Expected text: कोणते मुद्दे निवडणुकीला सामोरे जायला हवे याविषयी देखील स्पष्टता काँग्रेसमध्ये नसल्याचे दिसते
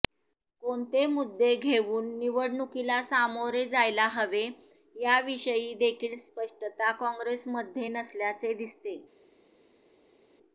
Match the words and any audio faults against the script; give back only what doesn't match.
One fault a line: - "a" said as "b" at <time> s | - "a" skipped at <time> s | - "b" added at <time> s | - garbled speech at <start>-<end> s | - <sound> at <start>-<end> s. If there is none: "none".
- "घेऊन" added at 1.6 s